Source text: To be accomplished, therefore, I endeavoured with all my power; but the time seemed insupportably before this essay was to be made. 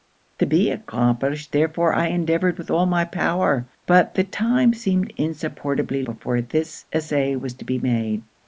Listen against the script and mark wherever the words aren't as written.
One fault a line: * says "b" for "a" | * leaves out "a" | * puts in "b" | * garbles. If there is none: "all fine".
all fine